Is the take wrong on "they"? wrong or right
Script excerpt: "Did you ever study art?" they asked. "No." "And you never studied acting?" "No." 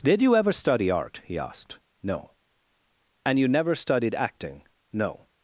wrong